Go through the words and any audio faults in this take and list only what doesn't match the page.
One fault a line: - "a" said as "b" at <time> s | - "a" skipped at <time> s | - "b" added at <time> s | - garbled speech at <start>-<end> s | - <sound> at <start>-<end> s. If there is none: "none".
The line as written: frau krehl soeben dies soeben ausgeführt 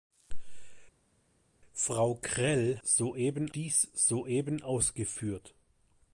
none